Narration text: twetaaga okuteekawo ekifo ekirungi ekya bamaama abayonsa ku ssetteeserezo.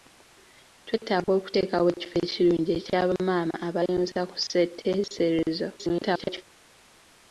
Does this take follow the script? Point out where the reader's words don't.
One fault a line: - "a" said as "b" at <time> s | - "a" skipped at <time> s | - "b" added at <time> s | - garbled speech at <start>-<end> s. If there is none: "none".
- garbled speech at 5.8-6.4 s